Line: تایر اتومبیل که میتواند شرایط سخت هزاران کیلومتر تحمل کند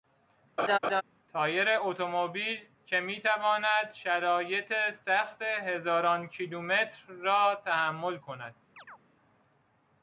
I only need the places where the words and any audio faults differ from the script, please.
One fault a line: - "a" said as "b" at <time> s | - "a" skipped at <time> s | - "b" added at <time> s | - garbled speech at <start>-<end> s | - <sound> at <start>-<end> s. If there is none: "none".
- laugh at 0.6-1.0 s
- "را" added at 7.1 s
- chirp at 8.8-9.0 s